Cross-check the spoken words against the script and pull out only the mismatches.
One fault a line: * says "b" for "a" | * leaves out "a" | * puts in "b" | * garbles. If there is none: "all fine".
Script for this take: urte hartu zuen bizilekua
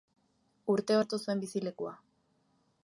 all fine